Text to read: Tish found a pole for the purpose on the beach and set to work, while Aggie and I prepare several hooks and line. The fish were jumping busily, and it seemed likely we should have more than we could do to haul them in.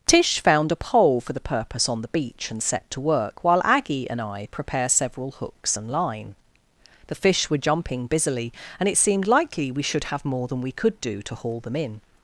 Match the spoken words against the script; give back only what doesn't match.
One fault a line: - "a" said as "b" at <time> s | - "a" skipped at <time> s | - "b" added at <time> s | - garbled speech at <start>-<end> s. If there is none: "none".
none